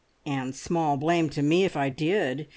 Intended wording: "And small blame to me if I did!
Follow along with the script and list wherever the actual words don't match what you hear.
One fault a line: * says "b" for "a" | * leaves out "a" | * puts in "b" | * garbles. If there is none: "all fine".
all fine